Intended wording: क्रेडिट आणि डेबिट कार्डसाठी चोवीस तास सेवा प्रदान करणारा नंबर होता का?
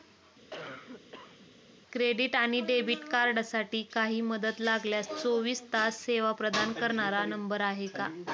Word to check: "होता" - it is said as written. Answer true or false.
false